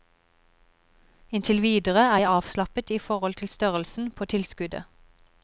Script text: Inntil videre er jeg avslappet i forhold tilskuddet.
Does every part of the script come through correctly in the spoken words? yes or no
no